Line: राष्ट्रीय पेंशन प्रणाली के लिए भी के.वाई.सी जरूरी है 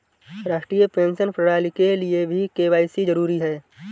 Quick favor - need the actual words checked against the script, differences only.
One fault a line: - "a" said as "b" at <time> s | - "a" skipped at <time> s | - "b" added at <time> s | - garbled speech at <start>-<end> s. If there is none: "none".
none